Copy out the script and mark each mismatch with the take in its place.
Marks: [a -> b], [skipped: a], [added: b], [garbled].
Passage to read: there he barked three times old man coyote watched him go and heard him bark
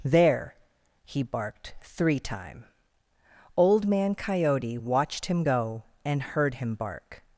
there he barked three [times -> time] old man coyote watched him go and heard him bark